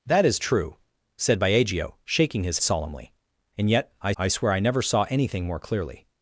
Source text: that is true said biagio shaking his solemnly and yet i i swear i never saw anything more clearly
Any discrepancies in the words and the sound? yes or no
no